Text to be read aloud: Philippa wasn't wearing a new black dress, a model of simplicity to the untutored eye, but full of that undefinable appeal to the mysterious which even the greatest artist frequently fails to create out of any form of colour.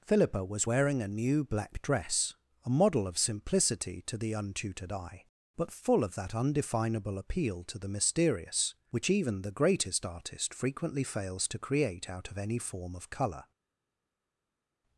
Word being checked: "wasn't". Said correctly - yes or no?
no